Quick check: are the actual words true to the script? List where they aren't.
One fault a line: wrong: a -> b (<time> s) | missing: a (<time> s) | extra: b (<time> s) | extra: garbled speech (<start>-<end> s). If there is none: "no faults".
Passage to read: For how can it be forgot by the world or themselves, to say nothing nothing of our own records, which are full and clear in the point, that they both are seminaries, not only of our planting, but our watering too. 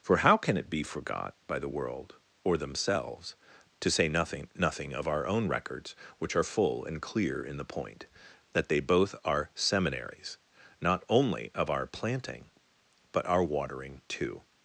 no faults